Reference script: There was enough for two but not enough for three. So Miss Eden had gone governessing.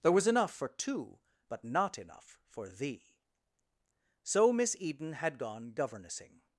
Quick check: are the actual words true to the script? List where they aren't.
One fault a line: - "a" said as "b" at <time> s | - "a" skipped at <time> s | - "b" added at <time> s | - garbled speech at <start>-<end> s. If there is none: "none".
- "three" said as "thee" at 2.7 s